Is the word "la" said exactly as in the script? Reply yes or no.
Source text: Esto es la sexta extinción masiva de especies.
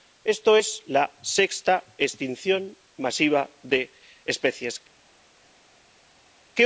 yes